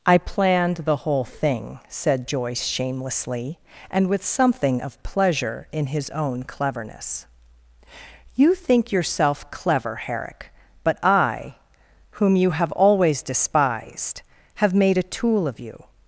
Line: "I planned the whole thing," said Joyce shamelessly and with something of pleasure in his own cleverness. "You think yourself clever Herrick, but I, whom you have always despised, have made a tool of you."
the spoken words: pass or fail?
pass